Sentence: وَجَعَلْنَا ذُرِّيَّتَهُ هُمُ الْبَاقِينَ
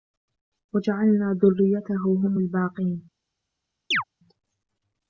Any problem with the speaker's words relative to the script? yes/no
no